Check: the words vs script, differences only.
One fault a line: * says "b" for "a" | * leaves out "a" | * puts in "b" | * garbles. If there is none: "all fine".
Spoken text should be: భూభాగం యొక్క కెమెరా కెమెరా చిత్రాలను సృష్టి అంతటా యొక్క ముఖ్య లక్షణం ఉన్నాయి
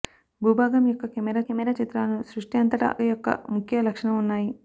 all fine